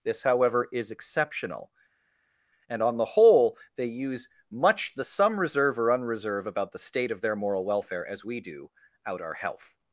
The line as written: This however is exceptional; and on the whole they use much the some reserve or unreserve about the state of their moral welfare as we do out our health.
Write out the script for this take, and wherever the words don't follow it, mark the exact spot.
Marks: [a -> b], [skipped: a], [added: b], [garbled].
This however is exceptional; and on the whole they use much the some reserve or unreserve about the state of their moral welfare as we do out our health.